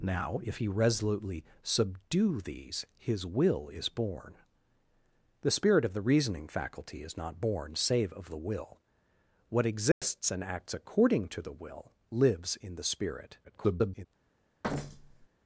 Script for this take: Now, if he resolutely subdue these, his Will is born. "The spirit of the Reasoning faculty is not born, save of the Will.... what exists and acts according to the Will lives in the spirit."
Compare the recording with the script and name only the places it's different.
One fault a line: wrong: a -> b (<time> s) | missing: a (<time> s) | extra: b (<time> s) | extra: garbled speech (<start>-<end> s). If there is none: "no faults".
extra: garbled speech (13.4-14.1 s)